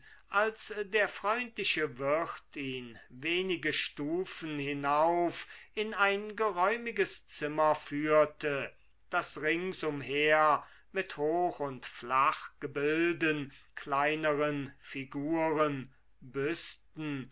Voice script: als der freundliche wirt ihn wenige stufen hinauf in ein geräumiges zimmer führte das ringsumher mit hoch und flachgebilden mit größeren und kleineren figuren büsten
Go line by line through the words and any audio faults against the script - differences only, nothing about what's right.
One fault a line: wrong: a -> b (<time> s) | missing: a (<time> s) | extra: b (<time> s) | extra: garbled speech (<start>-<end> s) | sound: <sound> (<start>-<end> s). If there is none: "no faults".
missing: mit größeren und (13.5 s)